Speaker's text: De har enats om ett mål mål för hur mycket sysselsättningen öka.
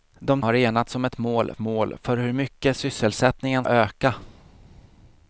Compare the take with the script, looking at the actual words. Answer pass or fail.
pass